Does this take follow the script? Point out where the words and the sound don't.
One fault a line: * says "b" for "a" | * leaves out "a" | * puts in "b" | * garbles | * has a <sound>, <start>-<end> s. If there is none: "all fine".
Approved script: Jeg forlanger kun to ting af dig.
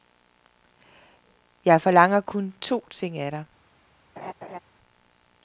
* has a laugh, 4.2-4.6 s